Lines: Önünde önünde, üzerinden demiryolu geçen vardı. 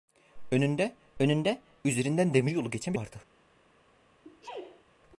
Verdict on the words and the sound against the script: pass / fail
fail